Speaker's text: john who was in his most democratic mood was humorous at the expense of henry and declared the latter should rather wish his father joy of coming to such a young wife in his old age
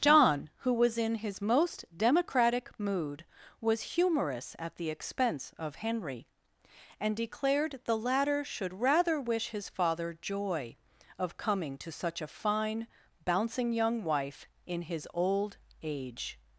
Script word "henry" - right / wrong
right